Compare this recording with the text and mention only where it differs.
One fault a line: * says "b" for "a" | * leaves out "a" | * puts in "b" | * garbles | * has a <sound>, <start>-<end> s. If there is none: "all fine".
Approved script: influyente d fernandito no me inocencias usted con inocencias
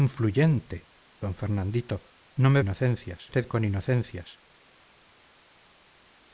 all fine